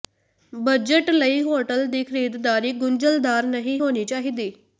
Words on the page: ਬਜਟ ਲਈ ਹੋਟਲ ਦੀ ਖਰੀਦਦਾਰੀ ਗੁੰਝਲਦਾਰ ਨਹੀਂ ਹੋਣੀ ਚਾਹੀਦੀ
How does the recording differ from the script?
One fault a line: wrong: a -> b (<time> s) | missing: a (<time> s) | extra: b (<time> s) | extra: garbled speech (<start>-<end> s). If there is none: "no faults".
no faults